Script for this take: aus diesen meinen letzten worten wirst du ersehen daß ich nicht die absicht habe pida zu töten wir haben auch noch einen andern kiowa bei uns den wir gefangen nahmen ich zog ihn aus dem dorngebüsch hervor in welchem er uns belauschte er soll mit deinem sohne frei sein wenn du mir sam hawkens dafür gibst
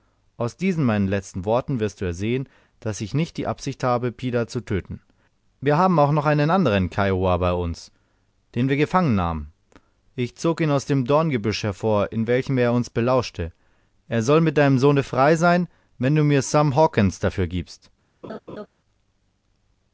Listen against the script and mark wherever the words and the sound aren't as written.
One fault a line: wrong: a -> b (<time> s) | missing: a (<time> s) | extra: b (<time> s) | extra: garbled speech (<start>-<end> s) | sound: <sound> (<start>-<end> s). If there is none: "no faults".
sound: laugh (18.2-18.7 s)